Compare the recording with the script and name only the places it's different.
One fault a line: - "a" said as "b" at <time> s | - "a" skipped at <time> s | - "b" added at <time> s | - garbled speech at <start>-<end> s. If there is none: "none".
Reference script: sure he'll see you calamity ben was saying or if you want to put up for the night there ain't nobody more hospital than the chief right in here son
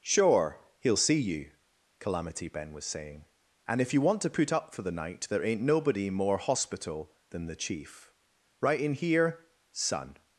- "or" said as "and" at 3.7 s